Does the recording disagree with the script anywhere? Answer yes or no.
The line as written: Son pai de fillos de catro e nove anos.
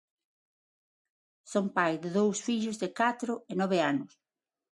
yes